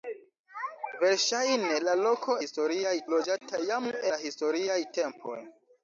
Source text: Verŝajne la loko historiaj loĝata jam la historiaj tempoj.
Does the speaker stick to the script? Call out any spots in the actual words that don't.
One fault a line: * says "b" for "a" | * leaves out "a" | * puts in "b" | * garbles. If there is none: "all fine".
all fine